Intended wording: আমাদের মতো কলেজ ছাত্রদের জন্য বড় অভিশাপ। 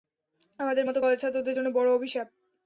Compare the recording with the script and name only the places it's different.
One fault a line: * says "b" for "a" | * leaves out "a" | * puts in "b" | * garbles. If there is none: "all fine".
all fine